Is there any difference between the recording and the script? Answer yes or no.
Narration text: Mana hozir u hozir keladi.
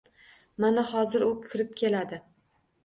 yes